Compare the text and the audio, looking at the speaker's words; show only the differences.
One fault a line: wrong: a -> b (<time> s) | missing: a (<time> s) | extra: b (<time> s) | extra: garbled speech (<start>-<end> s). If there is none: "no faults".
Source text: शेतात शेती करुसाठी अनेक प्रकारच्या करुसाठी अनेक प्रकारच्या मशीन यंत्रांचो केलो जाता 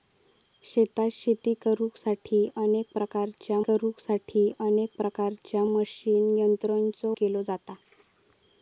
no faults